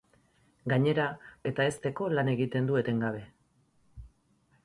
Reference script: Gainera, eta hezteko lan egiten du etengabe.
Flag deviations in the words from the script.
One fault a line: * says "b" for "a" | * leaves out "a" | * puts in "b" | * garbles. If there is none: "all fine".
all fine